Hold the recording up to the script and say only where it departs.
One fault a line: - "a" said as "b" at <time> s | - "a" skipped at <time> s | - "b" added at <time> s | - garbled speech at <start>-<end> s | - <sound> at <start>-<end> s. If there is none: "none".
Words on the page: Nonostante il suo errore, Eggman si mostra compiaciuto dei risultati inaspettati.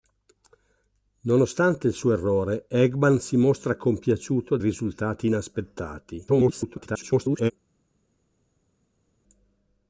- "dei" skipped at 4.6 s
- garbled speech at 6.3-7.5 s